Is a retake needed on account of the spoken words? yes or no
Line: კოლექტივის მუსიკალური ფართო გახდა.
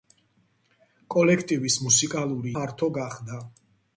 no